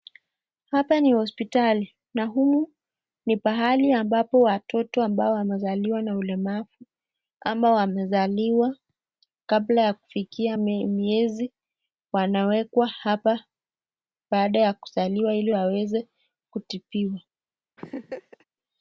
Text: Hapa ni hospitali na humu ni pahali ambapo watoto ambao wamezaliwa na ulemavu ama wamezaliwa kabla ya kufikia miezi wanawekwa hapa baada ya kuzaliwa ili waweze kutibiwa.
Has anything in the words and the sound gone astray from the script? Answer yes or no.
yes